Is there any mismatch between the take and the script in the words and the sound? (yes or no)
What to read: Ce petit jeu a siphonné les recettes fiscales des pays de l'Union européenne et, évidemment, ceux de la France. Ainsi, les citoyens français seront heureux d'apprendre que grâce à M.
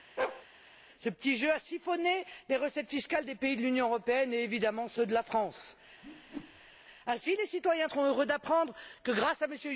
yes